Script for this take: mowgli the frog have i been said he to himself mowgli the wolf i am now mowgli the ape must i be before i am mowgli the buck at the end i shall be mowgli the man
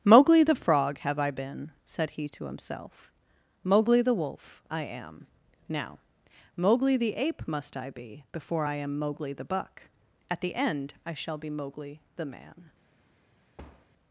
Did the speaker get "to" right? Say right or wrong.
right